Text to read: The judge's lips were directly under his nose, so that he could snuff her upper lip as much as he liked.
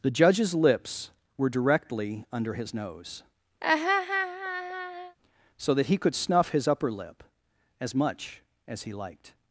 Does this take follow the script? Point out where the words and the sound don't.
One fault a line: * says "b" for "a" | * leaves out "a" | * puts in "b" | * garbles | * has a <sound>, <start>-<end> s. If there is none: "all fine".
* has a laugh, 3.6-5.2 s
* says "his" for "her"